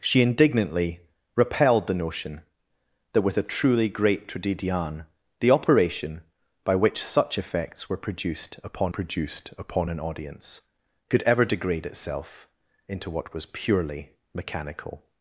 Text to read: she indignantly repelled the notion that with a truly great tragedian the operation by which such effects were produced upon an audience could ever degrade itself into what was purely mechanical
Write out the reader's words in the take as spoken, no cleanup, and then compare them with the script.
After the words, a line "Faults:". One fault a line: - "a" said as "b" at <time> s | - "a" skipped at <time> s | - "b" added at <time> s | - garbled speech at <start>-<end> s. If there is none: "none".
she indignantly repelled the notion that with a truly great tragedian the operation by which such effects were produced upon produced upon an audience could ever degrade itself into what was purely mechanical
Faults:
- "produced upon" added at 8.9 s